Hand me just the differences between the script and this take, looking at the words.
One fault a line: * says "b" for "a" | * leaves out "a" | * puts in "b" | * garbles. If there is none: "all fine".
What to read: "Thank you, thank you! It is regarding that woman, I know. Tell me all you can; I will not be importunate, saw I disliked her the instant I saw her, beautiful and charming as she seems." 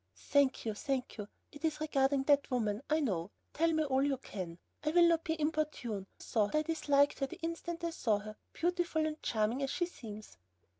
all fine